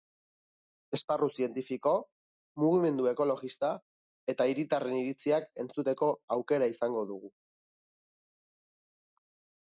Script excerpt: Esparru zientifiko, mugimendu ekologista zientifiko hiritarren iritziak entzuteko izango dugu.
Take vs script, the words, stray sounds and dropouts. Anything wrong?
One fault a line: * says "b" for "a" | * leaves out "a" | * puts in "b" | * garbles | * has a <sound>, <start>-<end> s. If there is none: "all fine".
* says "eta" for "zientifiko"
* puts in "aukera"